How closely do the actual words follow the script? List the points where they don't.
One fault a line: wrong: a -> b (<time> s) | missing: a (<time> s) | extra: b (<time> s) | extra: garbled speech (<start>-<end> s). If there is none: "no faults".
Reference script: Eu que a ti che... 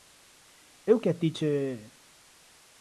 no faults